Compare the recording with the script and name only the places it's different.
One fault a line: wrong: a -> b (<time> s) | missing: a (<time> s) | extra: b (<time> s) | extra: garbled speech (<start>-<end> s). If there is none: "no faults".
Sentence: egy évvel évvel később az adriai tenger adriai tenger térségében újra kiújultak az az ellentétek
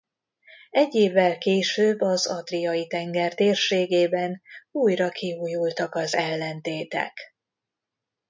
missing: évvel (1.4 s)
missing: adriai tenger (3.4 s)
missing: az (6.2 s)